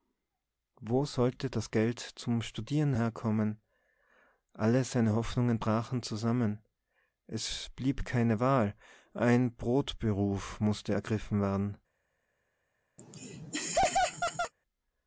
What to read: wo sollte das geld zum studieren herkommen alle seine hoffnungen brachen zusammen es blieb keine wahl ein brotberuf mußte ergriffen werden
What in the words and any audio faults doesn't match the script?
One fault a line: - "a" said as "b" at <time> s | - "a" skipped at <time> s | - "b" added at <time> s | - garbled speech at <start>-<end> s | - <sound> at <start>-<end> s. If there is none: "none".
- laugh at 13.0-14.5 s